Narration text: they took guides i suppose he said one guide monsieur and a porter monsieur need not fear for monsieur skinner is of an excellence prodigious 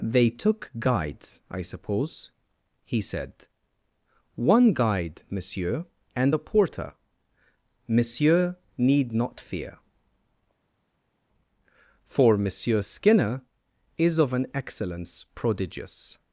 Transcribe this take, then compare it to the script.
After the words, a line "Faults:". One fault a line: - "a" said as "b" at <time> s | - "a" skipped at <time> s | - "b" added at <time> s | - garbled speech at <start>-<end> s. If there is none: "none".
they took guides i suppose he said one guide monsieur and a porter monsieur need not fear for monsieur skinner is of an excellence prodigious
Faults:
none